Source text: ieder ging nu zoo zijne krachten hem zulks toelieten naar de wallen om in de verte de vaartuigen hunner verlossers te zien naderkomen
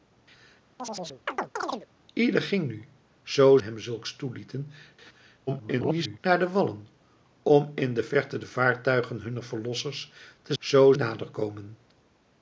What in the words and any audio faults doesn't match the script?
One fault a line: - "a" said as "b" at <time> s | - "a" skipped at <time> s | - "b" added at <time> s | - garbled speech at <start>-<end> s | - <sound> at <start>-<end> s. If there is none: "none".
- chirp at 0.8-1.9 s
- "zijne krachten" skipped at 3.6 s
- garbled speech at 5.5-6.2 s
- "zien" said as "zoo" at 10.6 s